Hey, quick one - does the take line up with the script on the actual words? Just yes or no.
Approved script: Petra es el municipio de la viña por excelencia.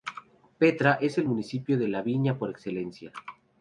yes